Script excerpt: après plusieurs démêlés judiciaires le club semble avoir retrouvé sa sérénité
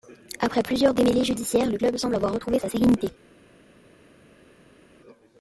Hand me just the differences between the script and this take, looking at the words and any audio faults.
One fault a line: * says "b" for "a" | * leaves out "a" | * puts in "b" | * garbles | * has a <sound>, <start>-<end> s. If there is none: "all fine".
all fine